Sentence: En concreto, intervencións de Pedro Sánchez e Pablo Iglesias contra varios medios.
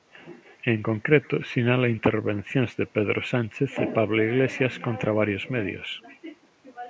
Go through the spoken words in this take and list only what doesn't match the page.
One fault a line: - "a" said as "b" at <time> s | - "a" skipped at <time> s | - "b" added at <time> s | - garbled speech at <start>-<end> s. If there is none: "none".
- "sinala" added at 1.5 s